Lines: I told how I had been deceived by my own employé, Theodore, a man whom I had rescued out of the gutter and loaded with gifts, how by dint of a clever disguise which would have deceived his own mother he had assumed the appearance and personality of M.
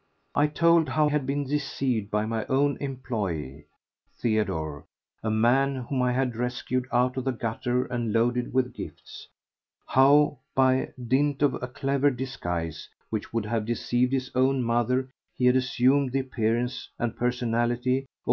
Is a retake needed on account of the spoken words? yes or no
yes